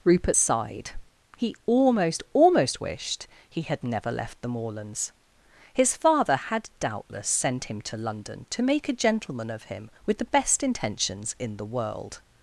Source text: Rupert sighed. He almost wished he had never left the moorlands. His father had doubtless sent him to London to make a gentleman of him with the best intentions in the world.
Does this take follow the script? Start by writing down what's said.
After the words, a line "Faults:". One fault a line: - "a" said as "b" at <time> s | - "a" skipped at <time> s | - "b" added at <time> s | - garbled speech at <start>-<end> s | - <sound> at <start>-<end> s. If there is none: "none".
Rupert sighed. He almost almost wished he had never left the moorlands. His father had doubtless sent him to London to make a gentleman of him with the best intentions in the world.
Faults:
- "almost" added at 2.3 s